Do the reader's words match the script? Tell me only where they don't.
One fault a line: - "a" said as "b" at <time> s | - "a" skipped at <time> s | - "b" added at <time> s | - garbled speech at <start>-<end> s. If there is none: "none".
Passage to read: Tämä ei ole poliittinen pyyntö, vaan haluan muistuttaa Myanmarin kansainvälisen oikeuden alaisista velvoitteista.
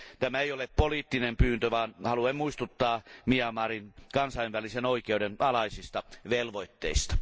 none